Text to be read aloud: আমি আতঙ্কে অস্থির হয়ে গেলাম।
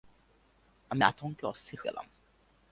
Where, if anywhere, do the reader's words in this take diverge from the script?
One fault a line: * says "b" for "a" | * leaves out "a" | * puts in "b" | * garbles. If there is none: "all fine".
* leaves out "হয়ে"